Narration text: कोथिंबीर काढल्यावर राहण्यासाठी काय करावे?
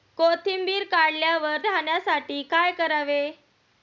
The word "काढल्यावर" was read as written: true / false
true